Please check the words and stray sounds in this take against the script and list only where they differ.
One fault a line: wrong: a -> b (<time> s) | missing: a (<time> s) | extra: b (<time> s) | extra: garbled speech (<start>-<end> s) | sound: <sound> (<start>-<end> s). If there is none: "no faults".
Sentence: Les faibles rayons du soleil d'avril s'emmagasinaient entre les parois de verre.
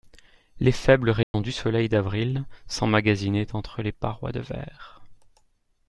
sound: dropout (1.2-1.3 s)